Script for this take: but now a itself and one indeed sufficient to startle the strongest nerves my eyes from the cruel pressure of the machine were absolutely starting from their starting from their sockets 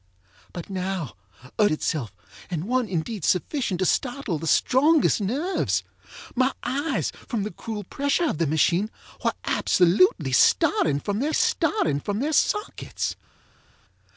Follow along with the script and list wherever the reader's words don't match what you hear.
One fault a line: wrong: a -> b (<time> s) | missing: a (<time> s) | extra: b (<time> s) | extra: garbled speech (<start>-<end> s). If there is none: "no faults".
no faults